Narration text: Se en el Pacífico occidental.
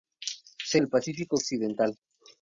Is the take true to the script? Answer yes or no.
yes